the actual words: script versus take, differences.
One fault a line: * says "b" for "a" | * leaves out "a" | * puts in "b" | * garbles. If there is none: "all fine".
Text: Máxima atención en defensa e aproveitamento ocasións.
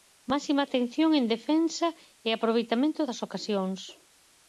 * puts in "das"